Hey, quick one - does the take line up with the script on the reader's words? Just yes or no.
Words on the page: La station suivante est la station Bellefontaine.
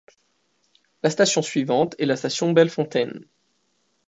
yes